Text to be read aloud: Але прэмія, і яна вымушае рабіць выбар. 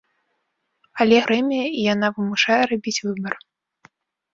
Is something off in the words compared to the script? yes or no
no